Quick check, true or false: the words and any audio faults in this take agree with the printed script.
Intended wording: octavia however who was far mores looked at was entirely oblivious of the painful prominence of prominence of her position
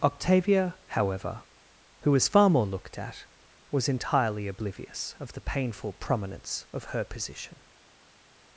false